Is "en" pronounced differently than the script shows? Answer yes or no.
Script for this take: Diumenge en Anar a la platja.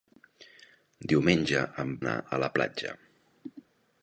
no